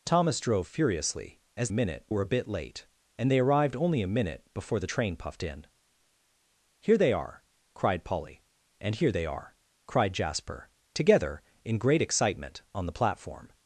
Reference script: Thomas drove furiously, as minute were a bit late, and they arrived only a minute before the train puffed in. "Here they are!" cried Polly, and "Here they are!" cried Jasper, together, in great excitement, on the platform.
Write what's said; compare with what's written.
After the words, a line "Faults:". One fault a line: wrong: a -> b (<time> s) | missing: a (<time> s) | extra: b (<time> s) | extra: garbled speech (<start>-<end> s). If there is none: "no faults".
Thomas drove furiously, as minute were a bit late, and they arrived only a minute before the train puffed in. "Here they are!" cried Polly, and "Here they are!" cried Jasper, together, in great excitement, on the platform.
Faults:
no faults